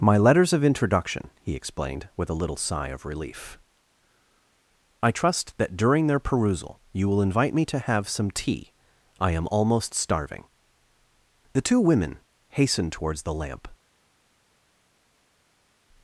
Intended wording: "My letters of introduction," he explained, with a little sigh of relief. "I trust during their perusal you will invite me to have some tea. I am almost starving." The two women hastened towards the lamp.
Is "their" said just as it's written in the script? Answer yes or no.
yes